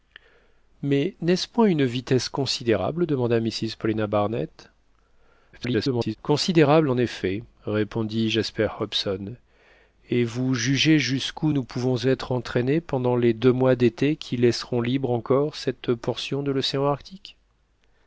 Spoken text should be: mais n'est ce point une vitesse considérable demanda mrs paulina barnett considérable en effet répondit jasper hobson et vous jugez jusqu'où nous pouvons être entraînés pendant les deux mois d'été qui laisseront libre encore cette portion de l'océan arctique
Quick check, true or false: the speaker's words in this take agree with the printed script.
false